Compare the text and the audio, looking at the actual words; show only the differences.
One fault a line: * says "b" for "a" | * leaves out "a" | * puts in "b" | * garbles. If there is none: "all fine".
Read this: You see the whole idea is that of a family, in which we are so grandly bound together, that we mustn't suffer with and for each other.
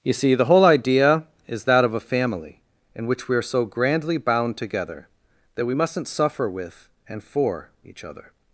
all fine